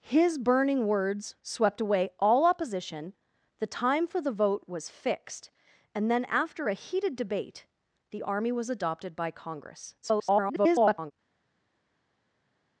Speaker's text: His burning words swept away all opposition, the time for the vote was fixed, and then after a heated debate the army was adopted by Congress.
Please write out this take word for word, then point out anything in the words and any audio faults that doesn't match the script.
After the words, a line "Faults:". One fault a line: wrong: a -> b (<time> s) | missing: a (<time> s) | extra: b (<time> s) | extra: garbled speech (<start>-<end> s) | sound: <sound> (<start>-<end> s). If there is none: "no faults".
His burning words swept away all opposition, the time for the vote was fixed, and then after a heated debate the army was adopted by Congress. [garbled]
Faults:
extra: garbled speech (10.0-11.1 s)